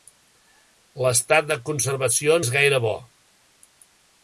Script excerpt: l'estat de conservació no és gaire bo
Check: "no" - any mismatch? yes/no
yes